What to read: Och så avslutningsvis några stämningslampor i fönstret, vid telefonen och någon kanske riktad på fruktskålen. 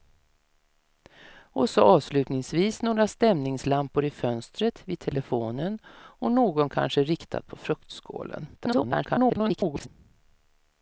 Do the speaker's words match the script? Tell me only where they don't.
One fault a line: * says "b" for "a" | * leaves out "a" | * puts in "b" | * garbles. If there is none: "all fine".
* garbles